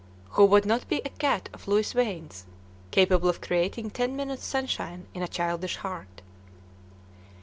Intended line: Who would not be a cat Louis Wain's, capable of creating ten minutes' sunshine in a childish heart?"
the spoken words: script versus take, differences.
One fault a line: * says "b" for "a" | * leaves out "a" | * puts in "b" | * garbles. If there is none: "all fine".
* puts in "of"